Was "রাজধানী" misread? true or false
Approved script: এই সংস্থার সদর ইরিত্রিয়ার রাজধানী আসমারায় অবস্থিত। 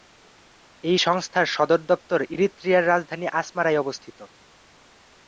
false